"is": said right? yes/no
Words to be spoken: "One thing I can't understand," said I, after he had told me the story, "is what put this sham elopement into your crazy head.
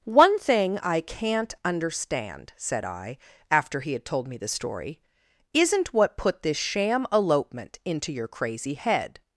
no